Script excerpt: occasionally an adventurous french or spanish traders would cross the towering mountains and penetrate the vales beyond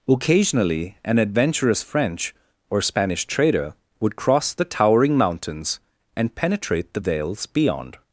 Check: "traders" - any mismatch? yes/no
yes